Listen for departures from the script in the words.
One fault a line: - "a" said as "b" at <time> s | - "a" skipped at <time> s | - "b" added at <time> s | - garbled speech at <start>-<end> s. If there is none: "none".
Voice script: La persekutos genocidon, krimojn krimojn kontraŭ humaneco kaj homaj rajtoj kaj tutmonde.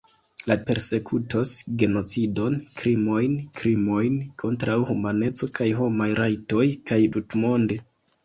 none